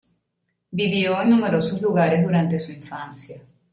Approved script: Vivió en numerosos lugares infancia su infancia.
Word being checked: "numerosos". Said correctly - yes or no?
yes